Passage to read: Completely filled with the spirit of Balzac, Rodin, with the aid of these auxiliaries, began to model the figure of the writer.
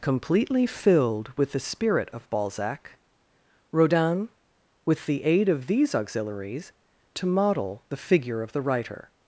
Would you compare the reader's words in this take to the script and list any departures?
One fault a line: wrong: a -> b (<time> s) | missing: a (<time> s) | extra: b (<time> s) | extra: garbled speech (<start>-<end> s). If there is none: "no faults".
missing: began (6.7 s)